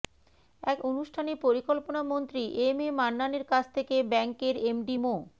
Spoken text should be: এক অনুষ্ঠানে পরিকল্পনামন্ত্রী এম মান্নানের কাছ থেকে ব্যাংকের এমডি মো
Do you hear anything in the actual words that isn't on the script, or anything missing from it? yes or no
yes